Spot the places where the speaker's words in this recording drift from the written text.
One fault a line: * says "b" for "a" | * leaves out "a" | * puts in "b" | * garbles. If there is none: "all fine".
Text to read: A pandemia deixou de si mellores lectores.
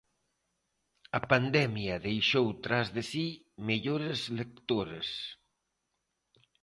* puts in "tras"